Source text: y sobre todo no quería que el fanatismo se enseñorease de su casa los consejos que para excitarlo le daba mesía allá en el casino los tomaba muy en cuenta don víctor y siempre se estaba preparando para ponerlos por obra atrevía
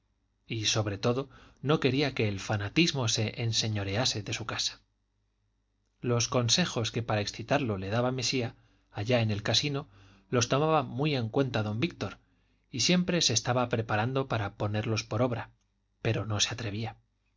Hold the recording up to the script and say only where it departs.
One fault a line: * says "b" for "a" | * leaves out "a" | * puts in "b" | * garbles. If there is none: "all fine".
* puts in "pero no se"